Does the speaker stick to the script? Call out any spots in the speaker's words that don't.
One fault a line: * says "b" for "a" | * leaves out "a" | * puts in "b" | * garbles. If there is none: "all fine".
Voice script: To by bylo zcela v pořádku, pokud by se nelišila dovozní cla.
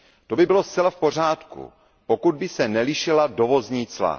all fine